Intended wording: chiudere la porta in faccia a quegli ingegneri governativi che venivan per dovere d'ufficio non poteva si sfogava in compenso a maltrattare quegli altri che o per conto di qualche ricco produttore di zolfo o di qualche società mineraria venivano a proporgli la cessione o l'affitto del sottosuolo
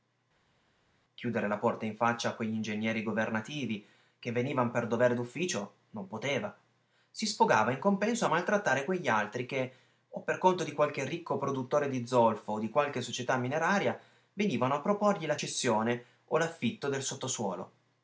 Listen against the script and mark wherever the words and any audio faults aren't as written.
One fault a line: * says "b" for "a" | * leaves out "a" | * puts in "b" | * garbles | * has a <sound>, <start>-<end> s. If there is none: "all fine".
all fine